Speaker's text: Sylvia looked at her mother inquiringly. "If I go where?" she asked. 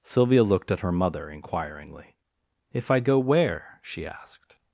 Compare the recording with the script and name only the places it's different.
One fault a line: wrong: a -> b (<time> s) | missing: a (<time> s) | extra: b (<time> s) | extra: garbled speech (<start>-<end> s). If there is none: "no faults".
no faults